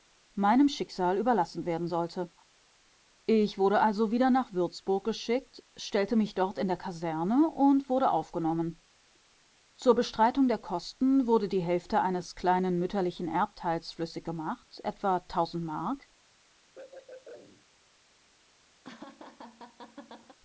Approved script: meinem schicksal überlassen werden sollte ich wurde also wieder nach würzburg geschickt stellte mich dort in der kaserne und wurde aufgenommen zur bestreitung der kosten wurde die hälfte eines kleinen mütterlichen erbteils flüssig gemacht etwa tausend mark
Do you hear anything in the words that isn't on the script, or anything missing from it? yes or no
no